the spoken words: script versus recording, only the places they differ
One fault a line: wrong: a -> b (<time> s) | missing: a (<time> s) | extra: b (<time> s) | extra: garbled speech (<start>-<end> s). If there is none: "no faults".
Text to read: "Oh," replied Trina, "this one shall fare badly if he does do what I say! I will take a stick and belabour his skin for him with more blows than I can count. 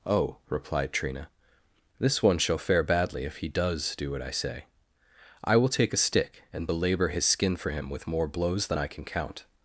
no faults